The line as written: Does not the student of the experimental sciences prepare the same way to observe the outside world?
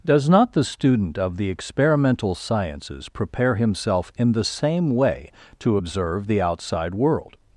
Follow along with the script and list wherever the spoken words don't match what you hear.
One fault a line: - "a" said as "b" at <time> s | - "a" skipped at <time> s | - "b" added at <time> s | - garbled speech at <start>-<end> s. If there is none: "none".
- "himself in" added at 3.5 s